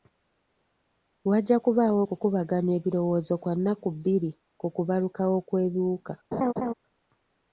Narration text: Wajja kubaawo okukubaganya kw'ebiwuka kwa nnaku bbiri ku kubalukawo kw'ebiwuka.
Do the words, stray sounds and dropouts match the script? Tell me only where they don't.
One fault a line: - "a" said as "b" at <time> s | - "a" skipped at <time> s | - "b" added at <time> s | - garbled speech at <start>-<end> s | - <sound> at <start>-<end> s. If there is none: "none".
- "kw'ebiwuka" said as "ebirowoozo" at 2.8 s
- laugh at 6.3-6.7 s